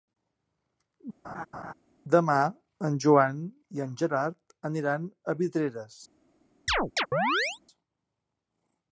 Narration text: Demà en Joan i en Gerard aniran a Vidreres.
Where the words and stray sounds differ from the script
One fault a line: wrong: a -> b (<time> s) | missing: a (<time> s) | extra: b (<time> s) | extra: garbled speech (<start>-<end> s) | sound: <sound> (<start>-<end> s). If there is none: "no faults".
sound: laugh (1.2-1.7 s)
sound: chirp (6.7-7.6 s)